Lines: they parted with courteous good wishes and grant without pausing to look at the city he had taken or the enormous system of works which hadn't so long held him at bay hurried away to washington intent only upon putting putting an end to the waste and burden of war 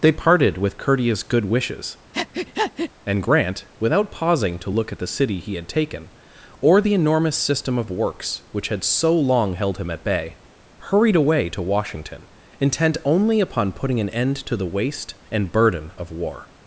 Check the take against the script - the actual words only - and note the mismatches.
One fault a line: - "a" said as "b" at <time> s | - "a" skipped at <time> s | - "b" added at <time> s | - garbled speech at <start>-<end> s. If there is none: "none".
- "hadn't" said as "had" at 8.7 s
- "putting" skipped at 14.0 s